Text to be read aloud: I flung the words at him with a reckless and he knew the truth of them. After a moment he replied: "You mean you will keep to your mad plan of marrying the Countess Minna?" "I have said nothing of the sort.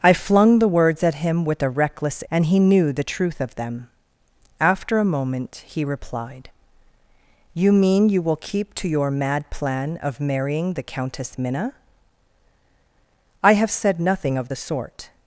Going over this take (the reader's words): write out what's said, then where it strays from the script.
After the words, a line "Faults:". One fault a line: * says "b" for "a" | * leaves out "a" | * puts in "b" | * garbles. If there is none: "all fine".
I flung the words at him with a reckless and he knew the truth of them. After a moment he replied: "You mean you will keep to your mad plan of marrying the Countess Minna?" "I have said nothing of the sort.
Faults:
all fine